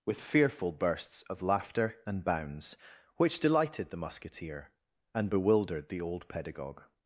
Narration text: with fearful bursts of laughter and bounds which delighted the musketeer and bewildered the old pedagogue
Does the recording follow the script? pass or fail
pass